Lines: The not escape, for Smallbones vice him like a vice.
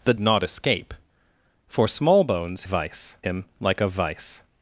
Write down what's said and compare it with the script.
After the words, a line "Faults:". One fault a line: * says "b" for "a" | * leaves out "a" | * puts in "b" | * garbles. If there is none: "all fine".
The not escape, for Smallbones vice him like a vice.
Faults:
all fine